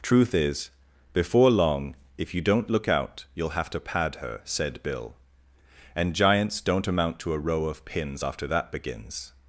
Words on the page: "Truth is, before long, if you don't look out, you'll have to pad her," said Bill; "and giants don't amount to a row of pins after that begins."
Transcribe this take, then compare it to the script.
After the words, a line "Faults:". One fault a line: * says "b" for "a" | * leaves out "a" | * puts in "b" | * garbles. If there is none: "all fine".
"Truth is, before long, if you don't look out, you'll have to pad her," said Bill; "and giants don't amount to a row of pins after that begins."
Faults:
all fine